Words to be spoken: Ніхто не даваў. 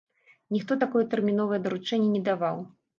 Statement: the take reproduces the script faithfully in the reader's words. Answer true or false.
false